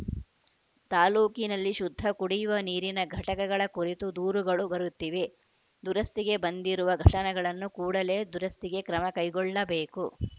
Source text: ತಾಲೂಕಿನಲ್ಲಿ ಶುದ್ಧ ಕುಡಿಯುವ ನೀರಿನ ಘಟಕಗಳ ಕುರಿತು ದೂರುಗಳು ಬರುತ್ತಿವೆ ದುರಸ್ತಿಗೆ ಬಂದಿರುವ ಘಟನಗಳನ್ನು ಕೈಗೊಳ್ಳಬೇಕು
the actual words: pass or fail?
fail